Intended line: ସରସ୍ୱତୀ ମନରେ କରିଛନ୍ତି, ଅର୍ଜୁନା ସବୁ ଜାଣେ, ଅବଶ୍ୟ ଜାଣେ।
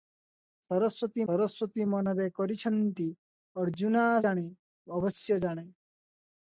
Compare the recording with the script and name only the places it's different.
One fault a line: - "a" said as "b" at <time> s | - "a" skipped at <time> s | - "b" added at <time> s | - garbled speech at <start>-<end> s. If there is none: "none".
- "ସରସ୍ୱତୀ" added at 1.3 s
- "ସବୁ" skipped at 4.0 s